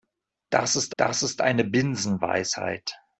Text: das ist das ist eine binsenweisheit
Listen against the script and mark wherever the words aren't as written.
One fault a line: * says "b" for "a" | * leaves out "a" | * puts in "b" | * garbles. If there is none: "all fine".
all fine